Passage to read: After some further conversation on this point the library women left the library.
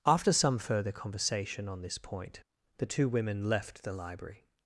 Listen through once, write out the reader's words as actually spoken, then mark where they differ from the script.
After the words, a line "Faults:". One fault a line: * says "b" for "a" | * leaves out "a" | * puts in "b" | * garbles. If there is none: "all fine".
After some further conversation on this point the two women left the library.
Faults:
* says "two" for "library"